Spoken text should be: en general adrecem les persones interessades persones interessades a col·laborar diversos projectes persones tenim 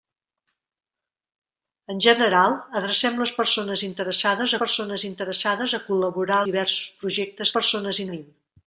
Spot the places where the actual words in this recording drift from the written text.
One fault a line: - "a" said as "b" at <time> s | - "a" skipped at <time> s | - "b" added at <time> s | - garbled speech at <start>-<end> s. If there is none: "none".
none